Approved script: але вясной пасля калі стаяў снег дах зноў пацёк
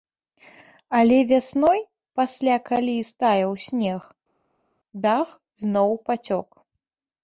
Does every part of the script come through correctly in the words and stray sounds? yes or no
yes